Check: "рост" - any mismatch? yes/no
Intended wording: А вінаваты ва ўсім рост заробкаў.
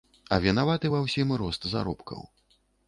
no